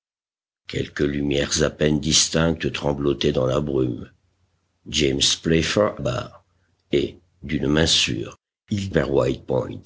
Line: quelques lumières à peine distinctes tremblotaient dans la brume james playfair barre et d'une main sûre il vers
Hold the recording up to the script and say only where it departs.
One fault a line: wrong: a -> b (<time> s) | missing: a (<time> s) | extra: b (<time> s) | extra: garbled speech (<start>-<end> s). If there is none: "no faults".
no faults